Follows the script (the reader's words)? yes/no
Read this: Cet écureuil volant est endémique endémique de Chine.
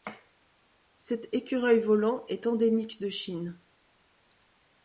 no